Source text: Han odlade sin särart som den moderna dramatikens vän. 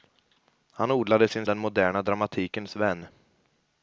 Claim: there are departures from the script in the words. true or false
true